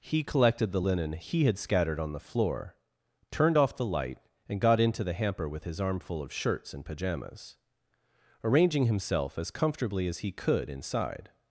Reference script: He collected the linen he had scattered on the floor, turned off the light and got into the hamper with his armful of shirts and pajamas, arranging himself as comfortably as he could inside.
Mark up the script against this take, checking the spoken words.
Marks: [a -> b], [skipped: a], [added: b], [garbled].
He collected the linen he had scattered on the floor, turned off the light and got into the hamper with his armful of shirts and pajamas, arranging himself as comfortably as he could inside.